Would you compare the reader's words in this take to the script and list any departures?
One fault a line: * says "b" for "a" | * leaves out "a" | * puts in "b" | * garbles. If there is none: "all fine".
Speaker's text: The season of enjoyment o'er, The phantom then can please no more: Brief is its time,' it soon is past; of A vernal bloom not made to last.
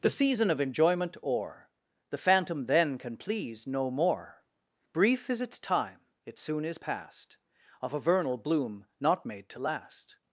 all fine